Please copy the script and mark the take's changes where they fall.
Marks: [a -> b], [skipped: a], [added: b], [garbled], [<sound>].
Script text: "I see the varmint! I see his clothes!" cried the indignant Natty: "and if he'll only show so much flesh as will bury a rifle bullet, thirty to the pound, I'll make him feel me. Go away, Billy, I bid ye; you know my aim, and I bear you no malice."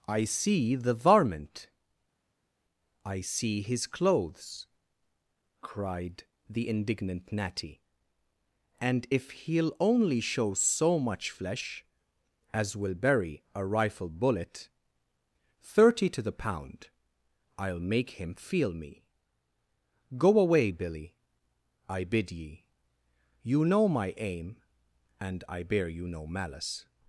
"I see the varmint! I see his clothes!" cried the indignant Natty: "and if he'll only show so much flesh as will bury a rifle bullet, thirty to the pound, I'll make him feel me. Go away, Billy, I bid ye; you know my aim, and I bear you no malice."